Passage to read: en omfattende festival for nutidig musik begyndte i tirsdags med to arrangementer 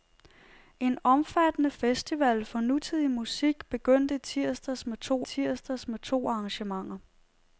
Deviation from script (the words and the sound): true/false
true